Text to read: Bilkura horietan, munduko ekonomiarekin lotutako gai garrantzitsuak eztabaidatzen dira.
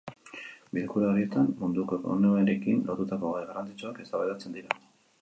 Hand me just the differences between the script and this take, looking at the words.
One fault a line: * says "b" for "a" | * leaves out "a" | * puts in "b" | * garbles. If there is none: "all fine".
all fine